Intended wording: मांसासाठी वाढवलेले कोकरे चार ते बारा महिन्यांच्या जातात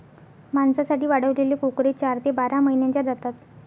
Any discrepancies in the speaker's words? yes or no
no